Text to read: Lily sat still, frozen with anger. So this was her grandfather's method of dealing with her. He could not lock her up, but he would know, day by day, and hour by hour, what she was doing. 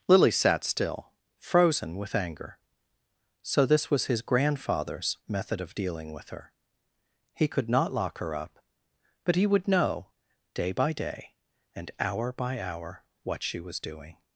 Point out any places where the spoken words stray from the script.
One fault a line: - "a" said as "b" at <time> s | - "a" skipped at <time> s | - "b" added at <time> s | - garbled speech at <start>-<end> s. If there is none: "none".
- "her" said as "his" at 4.0 s